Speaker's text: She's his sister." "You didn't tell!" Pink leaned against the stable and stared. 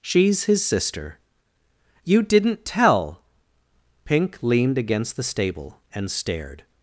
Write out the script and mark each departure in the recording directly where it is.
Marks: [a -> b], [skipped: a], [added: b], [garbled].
She's his sister." "You didn't tell!" Pink leaned against the stable and stared.